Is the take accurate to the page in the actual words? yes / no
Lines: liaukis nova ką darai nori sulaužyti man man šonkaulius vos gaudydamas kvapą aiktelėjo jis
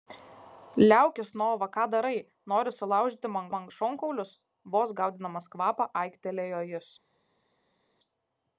yes